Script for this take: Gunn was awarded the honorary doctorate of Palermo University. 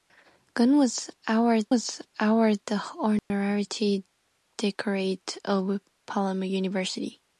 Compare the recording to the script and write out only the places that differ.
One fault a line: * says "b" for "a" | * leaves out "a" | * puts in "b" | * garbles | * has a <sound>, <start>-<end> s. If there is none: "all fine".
* puts in "was awarded"
* has a dropout, 3.2-3.3 s